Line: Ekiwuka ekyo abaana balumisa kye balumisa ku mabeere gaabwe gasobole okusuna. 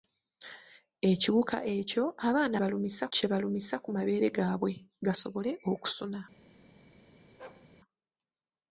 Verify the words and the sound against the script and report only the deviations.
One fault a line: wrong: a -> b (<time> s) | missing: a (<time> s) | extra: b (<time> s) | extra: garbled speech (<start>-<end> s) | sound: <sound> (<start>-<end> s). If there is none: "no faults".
sound: bark (7.4-7.7 s)